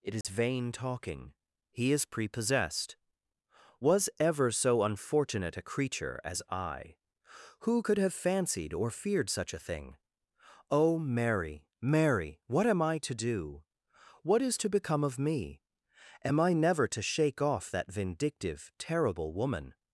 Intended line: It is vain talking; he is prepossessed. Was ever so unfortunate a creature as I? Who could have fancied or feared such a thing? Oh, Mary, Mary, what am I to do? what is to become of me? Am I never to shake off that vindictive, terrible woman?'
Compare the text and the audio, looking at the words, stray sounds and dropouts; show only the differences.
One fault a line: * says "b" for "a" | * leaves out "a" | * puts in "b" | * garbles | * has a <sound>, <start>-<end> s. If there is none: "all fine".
* has a dropout, 0.2-0.2 s